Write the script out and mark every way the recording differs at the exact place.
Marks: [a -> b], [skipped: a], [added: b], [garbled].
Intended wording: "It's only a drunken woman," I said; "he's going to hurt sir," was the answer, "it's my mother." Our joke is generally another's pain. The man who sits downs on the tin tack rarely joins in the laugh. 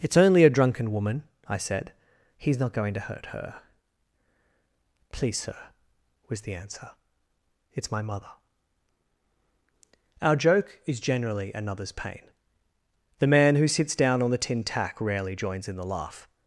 "It's only a drunken woman," I said; "he's [added: not] going to hurt [added: her Please] sir," was the answer, "it's my mother." Our joke is generally another's pain. The man who sits [downs -> down] on the tin tack rarely joins in the laugh.